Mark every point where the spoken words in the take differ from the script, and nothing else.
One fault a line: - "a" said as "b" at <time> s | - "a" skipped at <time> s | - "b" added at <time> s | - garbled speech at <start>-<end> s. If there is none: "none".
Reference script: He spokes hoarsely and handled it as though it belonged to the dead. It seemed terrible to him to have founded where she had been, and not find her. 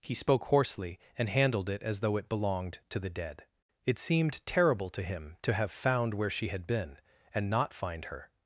- "spokes" said as "spoke" at 0.1 s
- "founded" said as "found" at 5.7 s